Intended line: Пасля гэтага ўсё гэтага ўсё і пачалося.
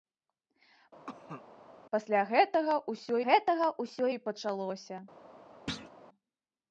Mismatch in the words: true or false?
false